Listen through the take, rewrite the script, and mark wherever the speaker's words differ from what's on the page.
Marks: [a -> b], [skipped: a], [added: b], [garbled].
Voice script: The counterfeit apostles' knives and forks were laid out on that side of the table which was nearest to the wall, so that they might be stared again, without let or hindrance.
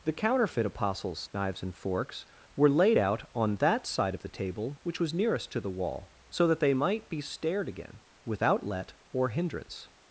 The counterfeit apostles' knives and forks were laid out on that side of the table which was nearest to the wall, so that they might be stared again, without let or hindrance.